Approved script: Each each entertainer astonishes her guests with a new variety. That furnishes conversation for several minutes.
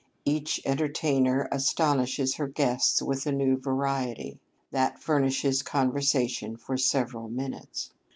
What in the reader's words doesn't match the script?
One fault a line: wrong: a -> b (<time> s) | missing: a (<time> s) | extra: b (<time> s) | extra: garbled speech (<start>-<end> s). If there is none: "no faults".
missing: each (0.6 s)